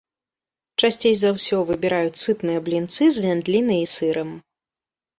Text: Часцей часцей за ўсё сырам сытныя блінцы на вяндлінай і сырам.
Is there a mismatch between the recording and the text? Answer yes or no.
yes